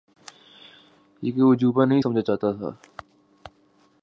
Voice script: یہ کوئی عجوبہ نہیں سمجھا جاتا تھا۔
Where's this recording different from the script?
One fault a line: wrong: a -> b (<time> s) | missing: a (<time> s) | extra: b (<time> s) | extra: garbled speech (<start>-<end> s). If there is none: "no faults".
no faults